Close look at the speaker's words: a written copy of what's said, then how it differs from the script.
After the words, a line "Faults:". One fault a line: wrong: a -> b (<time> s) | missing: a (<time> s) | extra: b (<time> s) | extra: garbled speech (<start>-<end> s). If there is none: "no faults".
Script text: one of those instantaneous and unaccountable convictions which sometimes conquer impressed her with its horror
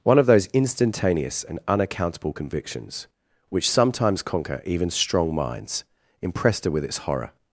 one of those instantaneous and unaccountable convictions which sometimes conquer even strong minds impressed her with its horror
Faults:
extra: even strong minds (4.6 s)